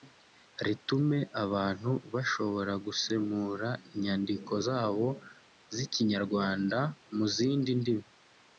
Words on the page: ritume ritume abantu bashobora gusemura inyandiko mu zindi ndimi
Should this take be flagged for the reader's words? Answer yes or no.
yes